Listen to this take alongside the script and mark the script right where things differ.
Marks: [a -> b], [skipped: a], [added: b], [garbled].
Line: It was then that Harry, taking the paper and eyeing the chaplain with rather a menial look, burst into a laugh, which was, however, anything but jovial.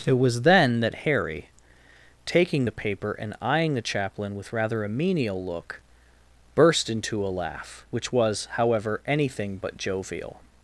It was then that Harry, taking the paper and eyeing the chaplain with rather a menial look, burst into a laugh, which was, however, anything but jovial.